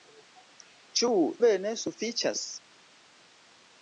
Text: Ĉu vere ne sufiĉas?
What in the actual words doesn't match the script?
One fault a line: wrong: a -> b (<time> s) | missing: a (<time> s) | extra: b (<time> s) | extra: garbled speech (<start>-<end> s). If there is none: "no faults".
no faults